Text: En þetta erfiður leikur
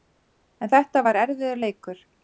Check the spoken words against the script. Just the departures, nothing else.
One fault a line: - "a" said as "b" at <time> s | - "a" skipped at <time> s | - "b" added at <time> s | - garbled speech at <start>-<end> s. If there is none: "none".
- "var" added at 1.1 s